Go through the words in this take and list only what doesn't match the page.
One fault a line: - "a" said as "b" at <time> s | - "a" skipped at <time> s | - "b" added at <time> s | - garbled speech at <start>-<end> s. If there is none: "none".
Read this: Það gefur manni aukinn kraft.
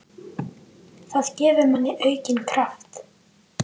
none